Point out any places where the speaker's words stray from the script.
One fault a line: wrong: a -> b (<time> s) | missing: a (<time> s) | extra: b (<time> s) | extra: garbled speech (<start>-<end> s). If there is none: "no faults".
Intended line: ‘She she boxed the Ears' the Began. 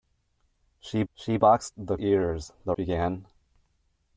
no faults